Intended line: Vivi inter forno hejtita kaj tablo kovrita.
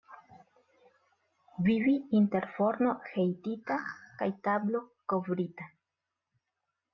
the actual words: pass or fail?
pass